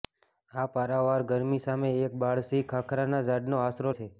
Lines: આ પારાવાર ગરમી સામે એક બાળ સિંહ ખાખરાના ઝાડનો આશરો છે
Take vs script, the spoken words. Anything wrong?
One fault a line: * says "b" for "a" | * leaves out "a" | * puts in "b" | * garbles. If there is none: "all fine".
all fine